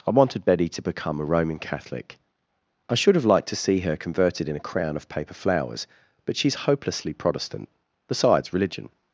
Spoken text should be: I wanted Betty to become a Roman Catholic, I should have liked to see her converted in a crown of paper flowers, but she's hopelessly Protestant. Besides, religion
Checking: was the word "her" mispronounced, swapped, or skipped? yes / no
no